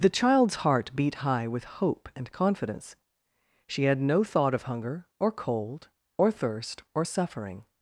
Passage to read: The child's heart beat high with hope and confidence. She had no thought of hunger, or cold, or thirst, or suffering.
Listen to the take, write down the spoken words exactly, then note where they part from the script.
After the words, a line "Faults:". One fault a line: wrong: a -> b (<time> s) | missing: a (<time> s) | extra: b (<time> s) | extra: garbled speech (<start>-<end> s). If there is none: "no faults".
The child's heart beat high with hope and confidence. She had no thought of hunger, or cold, or thirst, or suffering.
Faults:
no faults